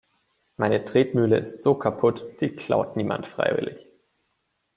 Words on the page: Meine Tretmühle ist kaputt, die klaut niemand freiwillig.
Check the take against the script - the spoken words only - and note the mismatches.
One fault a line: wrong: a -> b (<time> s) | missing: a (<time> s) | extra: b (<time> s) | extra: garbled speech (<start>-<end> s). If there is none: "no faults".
extra: so (1.6 s)